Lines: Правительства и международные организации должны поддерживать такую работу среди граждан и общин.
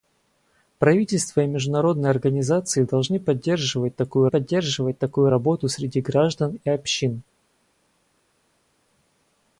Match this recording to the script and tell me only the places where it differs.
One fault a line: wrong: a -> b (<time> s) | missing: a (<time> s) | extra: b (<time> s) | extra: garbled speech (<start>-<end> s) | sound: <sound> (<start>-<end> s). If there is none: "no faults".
extra: поддерживать такую (4.3 s)